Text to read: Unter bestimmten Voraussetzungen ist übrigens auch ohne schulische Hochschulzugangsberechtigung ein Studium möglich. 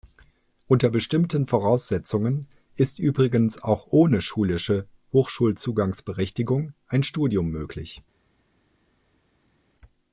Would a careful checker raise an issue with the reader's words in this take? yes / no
no